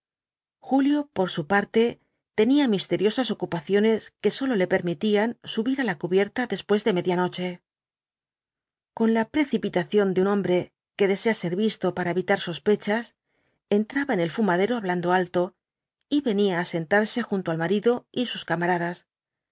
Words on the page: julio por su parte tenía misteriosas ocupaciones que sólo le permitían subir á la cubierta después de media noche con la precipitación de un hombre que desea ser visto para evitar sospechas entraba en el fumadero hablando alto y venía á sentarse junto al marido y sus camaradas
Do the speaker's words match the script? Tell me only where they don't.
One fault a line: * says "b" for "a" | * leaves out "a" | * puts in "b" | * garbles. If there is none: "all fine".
all fine